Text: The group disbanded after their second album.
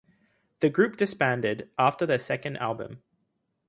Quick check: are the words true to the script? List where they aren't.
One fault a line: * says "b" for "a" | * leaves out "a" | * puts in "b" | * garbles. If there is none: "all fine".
all fine